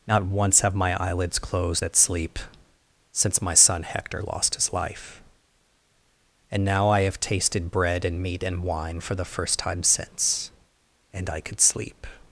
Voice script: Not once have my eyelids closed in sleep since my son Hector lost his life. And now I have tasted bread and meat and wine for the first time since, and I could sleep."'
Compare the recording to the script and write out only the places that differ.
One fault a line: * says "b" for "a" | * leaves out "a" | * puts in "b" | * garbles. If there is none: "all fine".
* says "at" for "in"